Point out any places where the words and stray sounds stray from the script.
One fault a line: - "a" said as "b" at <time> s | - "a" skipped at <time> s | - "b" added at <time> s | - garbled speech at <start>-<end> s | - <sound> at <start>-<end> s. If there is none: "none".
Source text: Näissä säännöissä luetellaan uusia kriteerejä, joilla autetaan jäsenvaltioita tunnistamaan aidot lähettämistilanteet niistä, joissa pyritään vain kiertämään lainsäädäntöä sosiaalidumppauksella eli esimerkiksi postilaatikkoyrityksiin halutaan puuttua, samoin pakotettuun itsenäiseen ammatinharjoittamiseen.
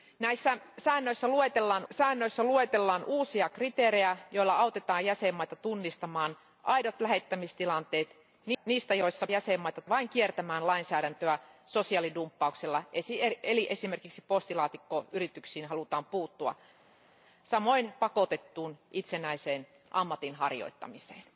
- "säännöissä luetellaan" added at 1.9 s
- "pyritään" said as "jäsenvaltioita" at 9.3 s